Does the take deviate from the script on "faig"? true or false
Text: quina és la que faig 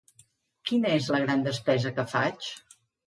false